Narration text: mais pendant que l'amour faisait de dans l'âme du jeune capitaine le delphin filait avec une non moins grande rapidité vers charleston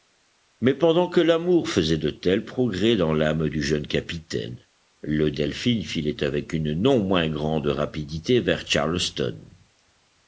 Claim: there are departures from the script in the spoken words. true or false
true